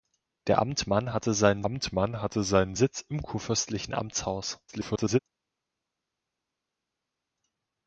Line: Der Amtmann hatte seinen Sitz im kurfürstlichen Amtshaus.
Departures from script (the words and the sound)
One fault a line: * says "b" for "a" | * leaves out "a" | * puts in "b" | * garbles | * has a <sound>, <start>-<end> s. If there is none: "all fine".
* puts in "Amtmann hatte seinen"
* garbles